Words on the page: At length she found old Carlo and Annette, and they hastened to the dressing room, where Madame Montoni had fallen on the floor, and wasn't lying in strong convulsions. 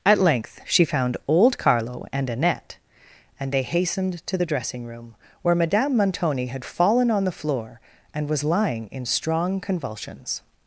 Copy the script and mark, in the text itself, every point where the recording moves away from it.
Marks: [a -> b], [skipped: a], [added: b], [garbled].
At length she found old Carlo and Annette, and they hastened to the dressing room, where Madame Montoni had fallen on the floor, and [wasn't -> was] lying in strong convulsions.